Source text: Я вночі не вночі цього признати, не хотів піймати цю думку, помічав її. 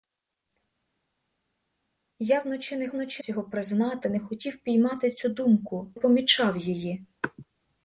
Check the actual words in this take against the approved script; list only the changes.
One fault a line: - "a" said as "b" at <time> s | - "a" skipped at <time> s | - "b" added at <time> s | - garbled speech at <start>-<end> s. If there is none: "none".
none